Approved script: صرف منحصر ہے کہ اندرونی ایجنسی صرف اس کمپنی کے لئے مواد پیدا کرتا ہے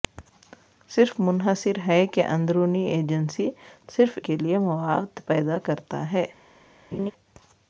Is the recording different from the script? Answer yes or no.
yes